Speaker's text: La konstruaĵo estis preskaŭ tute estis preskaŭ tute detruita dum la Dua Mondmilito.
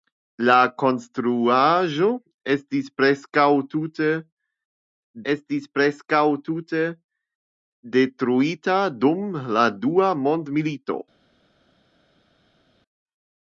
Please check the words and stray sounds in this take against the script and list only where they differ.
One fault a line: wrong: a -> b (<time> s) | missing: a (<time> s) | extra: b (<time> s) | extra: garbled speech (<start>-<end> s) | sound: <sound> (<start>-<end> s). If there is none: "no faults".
no faults